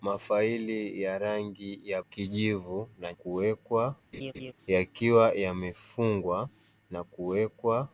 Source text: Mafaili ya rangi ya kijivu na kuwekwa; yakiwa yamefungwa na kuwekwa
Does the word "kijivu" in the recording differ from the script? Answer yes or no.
no